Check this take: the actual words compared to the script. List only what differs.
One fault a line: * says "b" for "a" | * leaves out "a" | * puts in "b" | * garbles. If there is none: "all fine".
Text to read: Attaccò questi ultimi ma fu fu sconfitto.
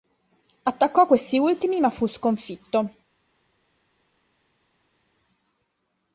* leaves out "fu"